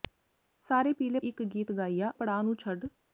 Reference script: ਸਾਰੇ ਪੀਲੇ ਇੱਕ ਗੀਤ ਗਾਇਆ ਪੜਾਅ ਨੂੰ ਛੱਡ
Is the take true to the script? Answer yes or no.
yes